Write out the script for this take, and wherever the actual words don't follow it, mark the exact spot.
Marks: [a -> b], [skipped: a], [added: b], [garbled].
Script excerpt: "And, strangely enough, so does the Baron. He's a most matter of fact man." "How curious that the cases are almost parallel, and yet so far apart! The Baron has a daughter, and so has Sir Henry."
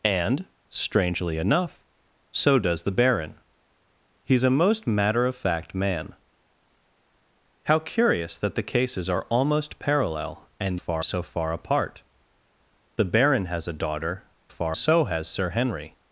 "And, strangely enough, so does the Baron. He's a most matter of fact man." "How curious that the cases are almost parallel, and [yet -> far] so far apart! The Baron has a daughter, [and -> far] so has Sir Henry."